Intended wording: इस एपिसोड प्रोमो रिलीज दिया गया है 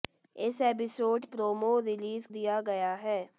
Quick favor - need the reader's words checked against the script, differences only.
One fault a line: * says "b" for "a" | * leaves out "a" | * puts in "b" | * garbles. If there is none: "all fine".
all fine